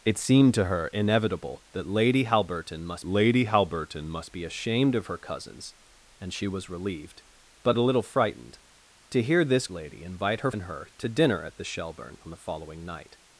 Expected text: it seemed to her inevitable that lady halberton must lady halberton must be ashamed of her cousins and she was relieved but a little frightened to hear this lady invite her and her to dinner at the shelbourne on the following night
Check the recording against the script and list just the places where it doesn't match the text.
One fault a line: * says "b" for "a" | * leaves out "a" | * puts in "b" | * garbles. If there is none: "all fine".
all fine